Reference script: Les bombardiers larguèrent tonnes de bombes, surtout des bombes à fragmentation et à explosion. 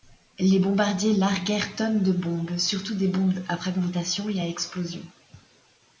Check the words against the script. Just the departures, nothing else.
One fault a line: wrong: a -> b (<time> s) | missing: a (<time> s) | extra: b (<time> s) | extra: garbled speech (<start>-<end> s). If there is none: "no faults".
no faults